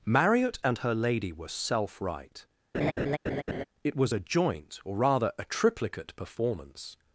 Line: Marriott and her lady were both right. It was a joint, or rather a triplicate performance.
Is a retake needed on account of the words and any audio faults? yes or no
yes